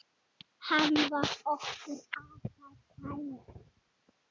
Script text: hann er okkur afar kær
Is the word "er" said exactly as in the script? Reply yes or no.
no